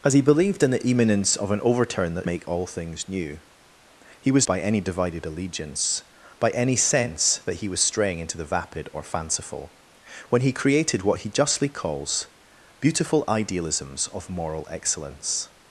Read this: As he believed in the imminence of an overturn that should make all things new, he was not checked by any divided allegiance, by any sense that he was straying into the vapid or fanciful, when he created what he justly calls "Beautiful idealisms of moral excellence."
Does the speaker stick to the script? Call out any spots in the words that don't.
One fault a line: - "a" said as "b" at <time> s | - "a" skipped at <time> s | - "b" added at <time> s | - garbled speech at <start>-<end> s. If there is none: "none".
- "should" skipped at 2.3 s
- "not checked" skipped at 4.5 s